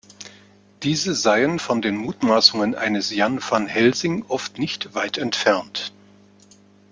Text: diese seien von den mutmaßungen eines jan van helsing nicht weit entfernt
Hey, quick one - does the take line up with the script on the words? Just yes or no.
no